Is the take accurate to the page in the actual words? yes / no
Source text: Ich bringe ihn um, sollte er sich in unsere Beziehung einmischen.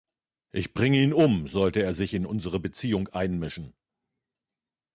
yes